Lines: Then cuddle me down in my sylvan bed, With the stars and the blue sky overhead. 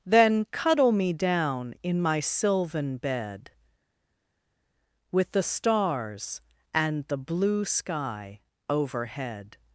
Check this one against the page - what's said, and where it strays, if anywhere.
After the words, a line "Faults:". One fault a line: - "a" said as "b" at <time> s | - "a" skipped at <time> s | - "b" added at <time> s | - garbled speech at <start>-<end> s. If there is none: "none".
Then cuddle me down in my sylvan bed, With the stars and the blue sky overhead.
Faults:
none